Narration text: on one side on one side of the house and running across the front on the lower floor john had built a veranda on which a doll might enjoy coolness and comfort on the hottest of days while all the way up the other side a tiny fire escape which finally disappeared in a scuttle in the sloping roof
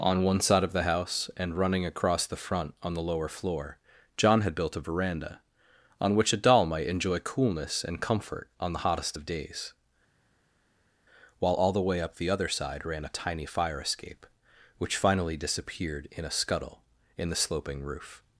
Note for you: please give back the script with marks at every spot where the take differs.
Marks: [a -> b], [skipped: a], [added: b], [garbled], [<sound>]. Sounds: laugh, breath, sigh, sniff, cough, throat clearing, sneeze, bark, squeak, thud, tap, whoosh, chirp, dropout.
on one side [skipped: on one side] of the house and running across the front on the lower floor john had built a veranda on which a doll might enjoy coolness and comfort on the hottest of days while all the way up the other side [added: ran] a tiny fire escape which finally disappeared in a scuttle in the sloping roof